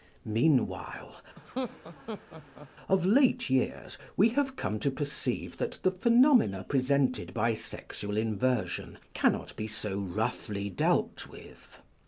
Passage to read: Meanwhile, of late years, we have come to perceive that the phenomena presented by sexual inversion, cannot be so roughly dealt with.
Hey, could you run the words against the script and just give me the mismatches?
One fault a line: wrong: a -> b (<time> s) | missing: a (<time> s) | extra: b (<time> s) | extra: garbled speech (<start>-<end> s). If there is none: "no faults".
no faults